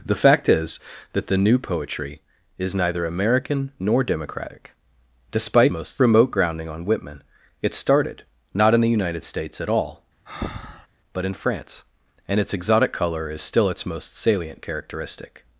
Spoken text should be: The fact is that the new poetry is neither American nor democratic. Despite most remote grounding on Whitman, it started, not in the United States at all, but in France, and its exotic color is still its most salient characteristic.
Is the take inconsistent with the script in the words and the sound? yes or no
yes